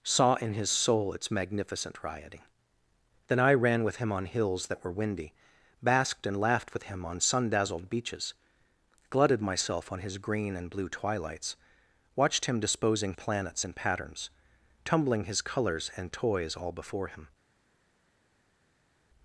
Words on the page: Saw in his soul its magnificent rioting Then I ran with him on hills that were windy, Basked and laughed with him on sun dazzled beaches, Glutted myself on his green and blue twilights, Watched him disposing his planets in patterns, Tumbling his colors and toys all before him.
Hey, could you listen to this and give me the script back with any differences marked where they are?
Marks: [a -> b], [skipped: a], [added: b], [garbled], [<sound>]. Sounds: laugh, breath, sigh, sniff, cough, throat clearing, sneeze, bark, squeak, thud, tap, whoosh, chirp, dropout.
Saw in his soul its magnificent rioting Then I ran with him on hills that were windy, Basked and laughed with him on sun dazzled beaches, Glutted myself on his green and blue twilights, Watched him disposing [skipped: his] planets in patterns, Tumbling his colors and toys all before him.